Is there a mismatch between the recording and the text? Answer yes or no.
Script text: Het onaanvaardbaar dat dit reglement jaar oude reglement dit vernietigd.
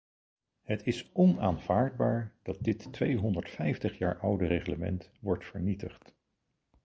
yes